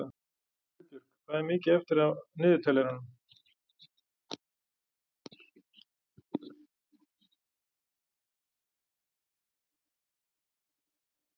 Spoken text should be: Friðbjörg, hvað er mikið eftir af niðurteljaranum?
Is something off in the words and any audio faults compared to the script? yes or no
no